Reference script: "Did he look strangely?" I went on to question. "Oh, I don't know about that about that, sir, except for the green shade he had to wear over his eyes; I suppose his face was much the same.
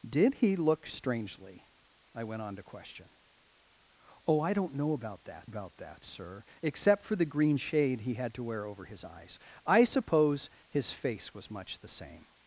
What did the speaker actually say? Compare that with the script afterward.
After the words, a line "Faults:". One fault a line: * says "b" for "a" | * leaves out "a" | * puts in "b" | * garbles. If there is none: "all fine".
"Did he look strangely?" I went on to question. "Oh, I don't know about that about that, sir, except for the green shade he had to wear over his eyes; I suppose his face was much the same.
Faults:
all fine